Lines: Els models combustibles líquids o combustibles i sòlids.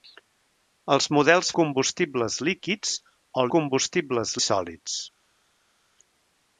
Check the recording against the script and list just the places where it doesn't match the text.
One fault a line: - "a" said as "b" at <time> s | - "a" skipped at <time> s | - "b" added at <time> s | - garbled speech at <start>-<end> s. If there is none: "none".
none